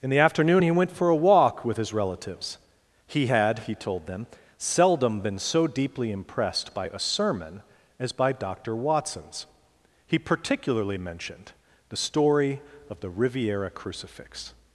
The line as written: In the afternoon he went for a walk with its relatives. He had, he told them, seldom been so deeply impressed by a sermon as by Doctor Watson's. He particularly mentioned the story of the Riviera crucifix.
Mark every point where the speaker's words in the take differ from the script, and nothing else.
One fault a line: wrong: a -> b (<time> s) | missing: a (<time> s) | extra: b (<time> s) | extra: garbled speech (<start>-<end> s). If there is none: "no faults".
wrong: its -> his (1.8 s)